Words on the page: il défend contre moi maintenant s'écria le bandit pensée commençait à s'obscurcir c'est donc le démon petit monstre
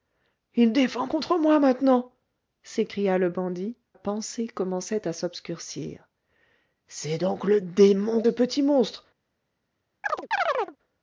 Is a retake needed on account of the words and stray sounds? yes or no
yes